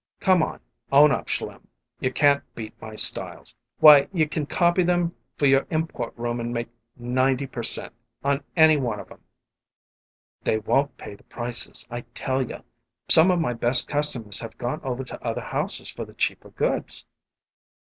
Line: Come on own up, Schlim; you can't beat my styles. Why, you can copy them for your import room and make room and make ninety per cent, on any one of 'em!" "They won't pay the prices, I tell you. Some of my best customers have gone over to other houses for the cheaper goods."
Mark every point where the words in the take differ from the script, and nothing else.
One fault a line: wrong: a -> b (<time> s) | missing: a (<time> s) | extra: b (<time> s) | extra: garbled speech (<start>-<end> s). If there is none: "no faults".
missing: room and make (6.7 s)